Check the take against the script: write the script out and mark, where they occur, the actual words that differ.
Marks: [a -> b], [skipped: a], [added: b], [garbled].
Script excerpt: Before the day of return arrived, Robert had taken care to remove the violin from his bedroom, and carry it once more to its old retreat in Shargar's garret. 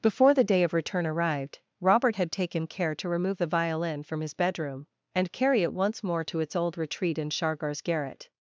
Before the day of return arrived, Robert had taken care to remove the violin from his bedroom, and carry it once more to its old retreat in Shargar's garret.